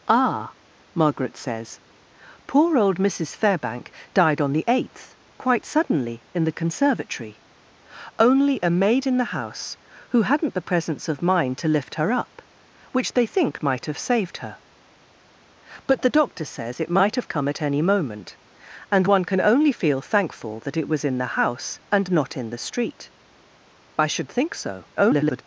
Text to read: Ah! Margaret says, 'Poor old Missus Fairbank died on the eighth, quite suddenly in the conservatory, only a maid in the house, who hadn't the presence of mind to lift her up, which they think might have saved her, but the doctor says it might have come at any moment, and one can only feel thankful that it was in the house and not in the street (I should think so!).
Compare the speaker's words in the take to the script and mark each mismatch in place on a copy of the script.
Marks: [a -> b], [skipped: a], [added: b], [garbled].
Ah! Margaret says, 'Poor old Missus Fairbank died on the eighth, quite suddenly in the conservatory, only a maid in the house, who hadn't the presence of mind to lift her up, which they think might have saved her, but the doctor says it might have come at any moment, and one can only feel thankful that it was in the house and not in the street (I should think so!). [garbled]